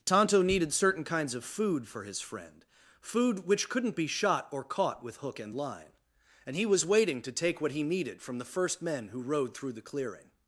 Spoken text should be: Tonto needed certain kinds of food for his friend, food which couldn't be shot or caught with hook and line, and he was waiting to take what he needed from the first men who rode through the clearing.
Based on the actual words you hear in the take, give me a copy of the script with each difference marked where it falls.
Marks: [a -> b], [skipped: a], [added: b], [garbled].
Tonto needed certain kinds of food for his friend, food which couldn't be shot or caught with hook and line, and he was waiting to take what he needed from the first men who rode through the clearing.